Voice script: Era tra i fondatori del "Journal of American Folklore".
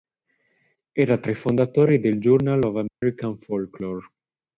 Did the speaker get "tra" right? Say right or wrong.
right